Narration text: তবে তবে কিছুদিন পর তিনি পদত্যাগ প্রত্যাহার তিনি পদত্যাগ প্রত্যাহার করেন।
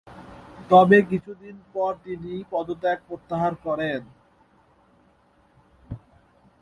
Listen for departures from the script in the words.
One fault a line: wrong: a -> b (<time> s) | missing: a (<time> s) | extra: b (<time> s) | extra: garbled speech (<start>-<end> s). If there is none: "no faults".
missing: তবে (1.0 s)
missing: তিনি পদত্যাগ প্রত্যাহার (3.5 s)